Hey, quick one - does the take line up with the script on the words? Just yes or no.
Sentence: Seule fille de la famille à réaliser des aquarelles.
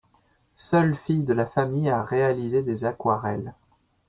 yes